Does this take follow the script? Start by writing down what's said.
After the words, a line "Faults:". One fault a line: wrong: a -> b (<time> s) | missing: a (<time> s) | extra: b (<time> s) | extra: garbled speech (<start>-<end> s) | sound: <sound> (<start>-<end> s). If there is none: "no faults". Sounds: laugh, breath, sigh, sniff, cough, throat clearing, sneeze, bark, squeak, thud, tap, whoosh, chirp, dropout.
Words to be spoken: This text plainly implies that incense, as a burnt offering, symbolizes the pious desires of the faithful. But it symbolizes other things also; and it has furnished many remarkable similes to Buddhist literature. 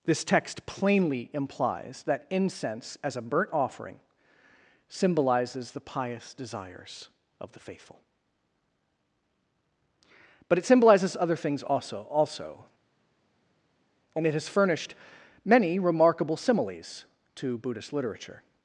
This text plainly implies that incense, as a burnt offering, symbolizes the pious desires of the faithful. But it symbolizes other things also also; and it has furnished many remarkable similes to Buddhist literature.
Faults:
extra: also (12.1 s)